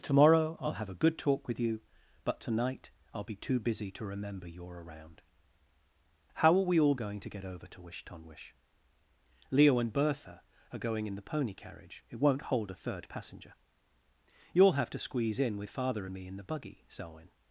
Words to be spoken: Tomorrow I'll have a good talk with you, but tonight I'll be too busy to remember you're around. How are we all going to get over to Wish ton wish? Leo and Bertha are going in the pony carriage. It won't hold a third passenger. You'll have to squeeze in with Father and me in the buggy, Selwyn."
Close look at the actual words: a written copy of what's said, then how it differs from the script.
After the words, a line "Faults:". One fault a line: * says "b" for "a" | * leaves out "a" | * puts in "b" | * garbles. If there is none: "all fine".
Tomorrow I'll have a good talk with you, but tonight I'll be too busy to remember you're around. How are we all going to get over to Wish ton wish? Leo and Bertha are going in the pony carriage. It won't hold a third passenger. You'll have to squeeze in with Father and me in the buggy, Selwyn."
Faults:
all fine